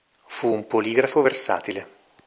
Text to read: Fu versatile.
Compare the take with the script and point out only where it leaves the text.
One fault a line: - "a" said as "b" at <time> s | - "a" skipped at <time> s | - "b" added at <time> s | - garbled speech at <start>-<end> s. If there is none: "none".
- "un poligrafo" added at 0.5 s